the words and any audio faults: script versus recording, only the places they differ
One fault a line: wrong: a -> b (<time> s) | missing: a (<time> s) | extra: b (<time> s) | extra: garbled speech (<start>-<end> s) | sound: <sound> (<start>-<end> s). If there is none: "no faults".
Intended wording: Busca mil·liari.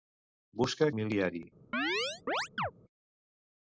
sound: chirp (1.7-2.7 s)